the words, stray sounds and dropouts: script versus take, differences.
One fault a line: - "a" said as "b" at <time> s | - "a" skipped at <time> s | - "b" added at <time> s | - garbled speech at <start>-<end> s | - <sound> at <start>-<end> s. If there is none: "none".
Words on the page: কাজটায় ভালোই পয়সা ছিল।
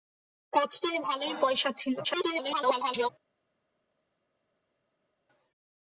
- garbled speech at 2.0-3.1 s